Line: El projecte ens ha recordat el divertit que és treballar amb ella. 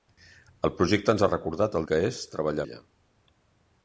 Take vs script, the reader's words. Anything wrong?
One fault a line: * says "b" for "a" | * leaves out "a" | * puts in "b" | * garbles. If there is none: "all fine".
* leaves out "divertit"
* leaves out "amb"